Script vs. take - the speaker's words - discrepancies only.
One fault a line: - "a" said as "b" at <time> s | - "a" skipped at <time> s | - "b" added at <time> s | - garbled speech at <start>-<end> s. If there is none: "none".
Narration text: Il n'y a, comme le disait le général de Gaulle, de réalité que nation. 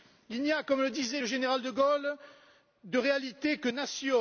none